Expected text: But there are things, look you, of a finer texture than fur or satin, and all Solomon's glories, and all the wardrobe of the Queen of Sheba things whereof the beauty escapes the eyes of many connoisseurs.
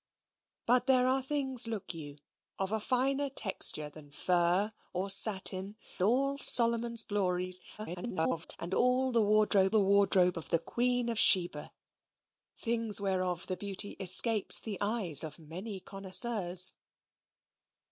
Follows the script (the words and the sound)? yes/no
no